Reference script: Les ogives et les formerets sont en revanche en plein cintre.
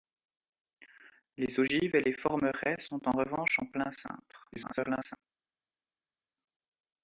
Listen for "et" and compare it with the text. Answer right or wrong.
right